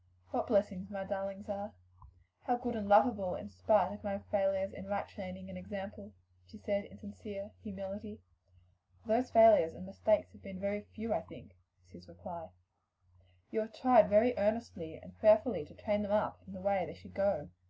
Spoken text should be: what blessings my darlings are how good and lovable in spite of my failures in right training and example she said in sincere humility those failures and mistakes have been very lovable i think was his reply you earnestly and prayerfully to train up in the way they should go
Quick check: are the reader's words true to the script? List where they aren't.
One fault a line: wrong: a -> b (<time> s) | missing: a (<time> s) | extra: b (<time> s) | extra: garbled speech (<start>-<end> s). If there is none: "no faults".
wrong: lovable -> few (10.8 s)
extra: have tried very (13.6 s)
extra: them (16.0 s)